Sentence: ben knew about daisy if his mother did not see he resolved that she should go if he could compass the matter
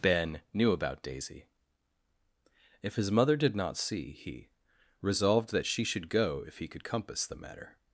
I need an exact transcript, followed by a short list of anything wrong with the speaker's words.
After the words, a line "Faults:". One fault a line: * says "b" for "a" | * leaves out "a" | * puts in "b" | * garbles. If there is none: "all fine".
ben knew about daisy if his mother did not see he resolved that she should go if he could compass the matter
Faults:
all fine